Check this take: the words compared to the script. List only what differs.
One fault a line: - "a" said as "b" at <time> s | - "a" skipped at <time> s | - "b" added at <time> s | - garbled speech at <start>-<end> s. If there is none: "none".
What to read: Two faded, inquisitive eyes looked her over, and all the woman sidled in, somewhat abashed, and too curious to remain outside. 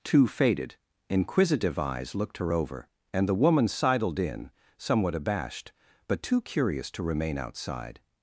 - "all" skipped at 3.3 s
- "and" said as "but" at 6.1 s